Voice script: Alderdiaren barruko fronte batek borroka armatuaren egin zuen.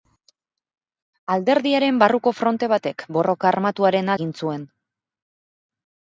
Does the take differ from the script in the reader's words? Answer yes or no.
no